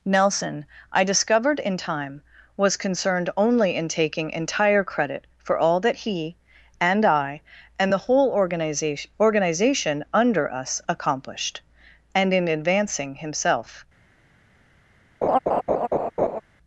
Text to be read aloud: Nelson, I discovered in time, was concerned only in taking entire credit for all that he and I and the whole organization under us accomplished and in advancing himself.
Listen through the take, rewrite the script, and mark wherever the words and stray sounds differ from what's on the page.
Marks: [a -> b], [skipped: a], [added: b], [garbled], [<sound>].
Nelson, I discovered in time, was concerned only in taking entire credit for all that he and I and the whole organization [added: organization] under us accomplished and in advancing himself. [laugh]